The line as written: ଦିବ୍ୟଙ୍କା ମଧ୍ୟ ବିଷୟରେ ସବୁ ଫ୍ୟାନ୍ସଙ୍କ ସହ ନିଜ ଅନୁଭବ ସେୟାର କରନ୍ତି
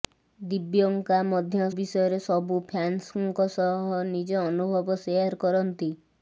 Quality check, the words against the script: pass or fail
pass